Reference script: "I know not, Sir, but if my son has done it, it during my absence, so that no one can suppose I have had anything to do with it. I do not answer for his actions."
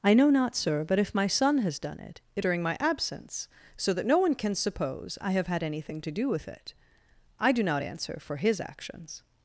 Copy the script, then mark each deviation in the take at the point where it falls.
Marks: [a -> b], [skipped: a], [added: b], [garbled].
"I know not, Sir, but if my son has done it, it during my absence, so that no one can suppose I have had anything to do with it. I do not answer for his actions."